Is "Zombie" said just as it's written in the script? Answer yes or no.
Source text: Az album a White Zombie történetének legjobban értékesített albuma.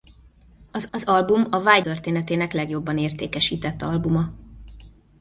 no